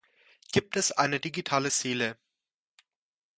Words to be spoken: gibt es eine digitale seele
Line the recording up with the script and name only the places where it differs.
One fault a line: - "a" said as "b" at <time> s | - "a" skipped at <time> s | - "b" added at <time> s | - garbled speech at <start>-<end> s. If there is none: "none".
none